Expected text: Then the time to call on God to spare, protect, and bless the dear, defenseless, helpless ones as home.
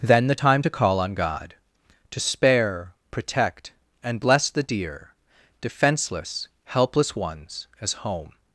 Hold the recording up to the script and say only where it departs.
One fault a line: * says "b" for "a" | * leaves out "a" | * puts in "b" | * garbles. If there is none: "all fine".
all fine